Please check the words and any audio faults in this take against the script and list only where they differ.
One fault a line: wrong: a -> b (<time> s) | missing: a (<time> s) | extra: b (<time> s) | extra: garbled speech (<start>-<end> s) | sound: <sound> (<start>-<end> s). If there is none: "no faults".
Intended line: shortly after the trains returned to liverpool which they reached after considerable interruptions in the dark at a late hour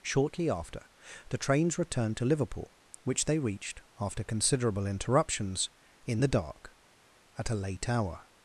no faults